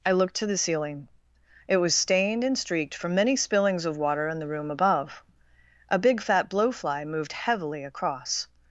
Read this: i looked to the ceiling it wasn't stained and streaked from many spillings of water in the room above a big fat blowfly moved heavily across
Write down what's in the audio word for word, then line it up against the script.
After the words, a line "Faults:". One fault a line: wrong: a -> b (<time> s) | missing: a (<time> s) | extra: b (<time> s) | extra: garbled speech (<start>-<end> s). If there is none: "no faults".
i looked to the ceiling it was stained and streaked from many spillings of water in the room above a big fat blowfly moved heavily across
Faults:
wrong: wasn't -> was (1.8 s)